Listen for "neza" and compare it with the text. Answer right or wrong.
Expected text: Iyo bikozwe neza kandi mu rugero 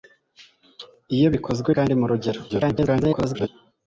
wrong